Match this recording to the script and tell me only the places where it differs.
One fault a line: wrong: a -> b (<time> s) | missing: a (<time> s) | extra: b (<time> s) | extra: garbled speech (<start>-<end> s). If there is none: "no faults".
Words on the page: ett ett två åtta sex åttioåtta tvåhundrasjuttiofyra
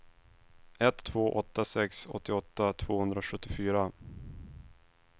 missing: ett (1.1 s)